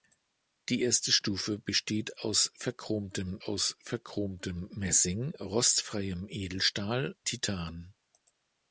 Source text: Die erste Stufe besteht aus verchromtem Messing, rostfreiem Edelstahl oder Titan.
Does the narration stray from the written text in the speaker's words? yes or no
yes